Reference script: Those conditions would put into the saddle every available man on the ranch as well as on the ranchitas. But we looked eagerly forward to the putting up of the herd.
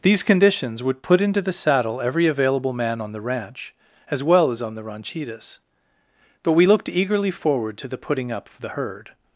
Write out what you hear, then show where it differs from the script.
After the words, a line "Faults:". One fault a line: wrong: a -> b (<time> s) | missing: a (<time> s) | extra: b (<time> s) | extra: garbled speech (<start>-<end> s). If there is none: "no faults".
These conditions would put into the saddle every available man on the ranch as well as on the ranchitas. But we looked eagerly forward to the putting up of the herd.
Faults:
wrong: Those -> These (0.0 s)